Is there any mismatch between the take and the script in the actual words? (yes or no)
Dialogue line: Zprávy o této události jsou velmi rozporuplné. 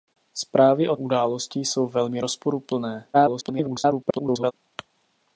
yes